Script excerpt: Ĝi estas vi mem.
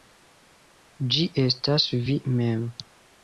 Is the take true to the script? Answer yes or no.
yes